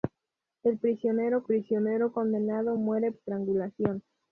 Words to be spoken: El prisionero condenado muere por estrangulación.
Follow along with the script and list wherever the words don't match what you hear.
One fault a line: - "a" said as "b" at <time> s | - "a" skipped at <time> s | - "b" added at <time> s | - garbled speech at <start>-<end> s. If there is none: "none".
- "prisionero" added at 1.4 s
- "por" skipped at 3.1 s